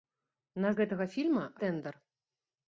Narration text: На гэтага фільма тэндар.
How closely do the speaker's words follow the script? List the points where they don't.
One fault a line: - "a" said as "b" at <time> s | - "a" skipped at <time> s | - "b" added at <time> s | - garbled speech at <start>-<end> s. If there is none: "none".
none